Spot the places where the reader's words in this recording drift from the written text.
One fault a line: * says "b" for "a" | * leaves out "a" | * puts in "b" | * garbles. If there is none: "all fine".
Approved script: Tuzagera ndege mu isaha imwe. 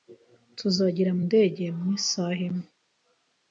all fine